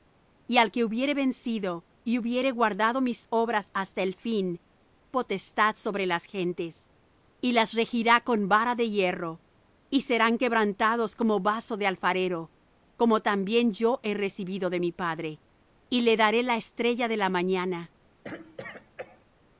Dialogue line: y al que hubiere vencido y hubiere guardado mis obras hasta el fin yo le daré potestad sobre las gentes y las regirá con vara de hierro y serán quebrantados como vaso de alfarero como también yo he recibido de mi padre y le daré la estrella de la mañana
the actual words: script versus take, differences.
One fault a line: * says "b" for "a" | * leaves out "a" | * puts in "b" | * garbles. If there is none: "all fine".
* leaves out "yo le daré"